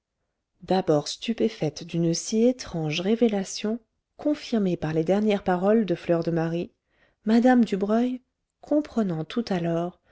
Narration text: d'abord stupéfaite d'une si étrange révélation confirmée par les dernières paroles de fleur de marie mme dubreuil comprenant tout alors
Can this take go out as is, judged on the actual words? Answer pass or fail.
pass